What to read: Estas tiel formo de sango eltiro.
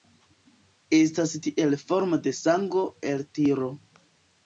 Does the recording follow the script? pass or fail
pass